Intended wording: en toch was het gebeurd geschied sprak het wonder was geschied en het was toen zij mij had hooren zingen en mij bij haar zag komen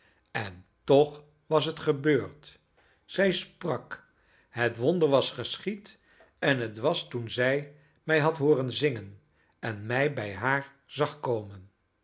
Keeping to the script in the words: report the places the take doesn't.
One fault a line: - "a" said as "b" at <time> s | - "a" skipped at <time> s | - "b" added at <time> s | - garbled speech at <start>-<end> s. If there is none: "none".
- "geschied" said as "zij" at 3.0 s